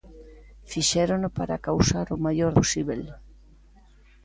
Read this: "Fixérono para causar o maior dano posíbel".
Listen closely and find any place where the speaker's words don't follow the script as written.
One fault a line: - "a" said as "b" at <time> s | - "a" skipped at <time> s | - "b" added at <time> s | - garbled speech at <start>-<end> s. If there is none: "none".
- "dano" skipped at 2.5 s